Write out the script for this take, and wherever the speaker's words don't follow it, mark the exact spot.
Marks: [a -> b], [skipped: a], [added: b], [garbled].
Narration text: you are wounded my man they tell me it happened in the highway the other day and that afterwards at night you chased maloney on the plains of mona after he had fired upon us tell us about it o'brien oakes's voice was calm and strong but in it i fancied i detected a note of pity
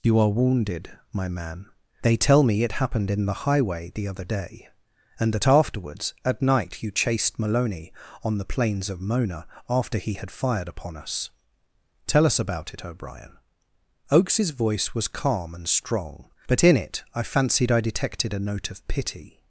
you are wounded my man they tell me it happened in the highway the other day and that afterwards at night you chased maloney on the plains of mona after he had fired upon us tell us about it o'brien oakes's voice was calm and strong but in it i fancied i detected a note of pity